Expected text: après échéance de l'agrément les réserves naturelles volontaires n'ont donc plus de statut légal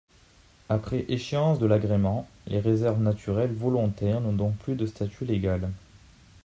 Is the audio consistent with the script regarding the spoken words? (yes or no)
yes